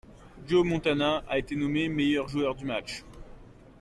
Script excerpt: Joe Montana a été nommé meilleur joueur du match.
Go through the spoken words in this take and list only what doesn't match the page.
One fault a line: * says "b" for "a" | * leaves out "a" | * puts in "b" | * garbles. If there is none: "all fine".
all fine